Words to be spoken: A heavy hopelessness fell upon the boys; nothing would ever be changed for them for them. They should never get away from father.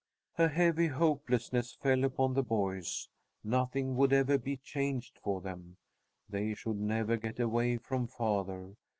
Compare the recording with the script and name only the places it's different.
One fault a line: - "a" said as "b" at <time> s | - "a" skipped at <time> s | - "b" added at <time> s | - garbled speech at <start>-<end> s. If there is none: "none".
- "for them" skipped at 5.8 s